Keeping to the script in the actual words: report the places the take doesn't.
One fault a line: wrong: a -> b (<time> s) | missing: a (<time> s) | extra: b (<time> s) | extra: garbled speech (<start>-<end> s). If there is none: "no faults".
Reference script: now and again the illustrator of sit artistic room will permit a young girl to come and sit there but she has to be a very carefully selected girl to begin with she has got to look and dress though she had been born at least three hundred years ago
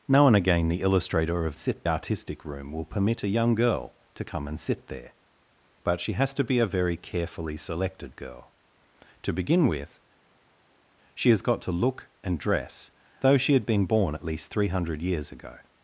no faults